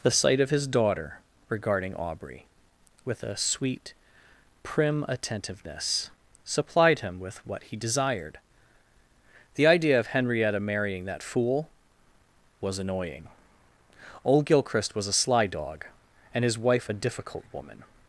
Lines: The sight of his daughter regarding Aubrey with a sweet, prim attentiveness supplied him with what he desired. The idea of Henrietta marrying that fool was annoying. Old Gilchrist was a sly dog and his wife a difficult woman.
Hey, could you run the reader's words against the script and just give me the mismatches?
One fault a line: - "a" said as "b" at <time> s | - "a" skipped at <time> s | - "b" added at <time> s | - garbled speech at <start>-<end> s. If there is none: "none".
none